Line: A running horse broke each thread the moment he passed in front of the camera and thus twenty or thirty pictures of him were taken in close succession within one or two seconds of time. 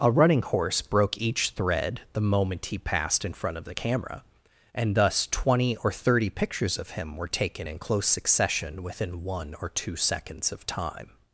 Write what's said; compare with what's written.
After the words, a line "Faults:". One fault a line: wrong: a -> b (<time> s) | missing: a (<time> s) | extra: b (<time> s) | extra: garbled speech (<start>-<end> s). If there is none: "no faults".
A running horse broke each thread the moment he passed in front of the camera and thus twenty or thirty pictures of him were taken in close succession within one or two seconds of time.
Faults:
no faults